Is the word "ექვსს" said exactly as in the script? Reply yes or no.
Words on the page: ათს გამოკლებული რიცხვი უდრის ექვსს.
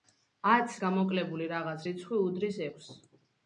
yes